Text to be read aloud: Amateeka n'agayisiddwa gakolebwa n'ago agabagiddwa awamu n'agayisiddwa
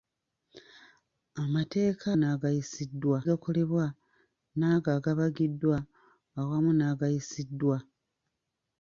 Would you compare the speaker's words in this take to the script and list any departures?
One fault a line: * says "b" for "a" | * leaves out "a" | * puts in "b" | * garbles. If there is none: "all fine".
all fine